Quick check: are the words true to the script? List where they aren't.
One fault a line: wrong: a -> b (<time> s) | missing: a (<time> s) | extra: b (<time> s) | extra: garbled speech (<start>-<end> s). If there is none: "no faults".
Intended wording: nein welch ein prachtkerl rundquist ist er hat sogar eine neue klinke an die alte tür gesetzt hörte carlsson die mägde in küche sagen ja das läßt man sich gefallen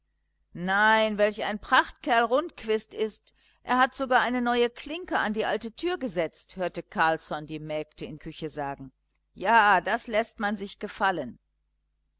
no faults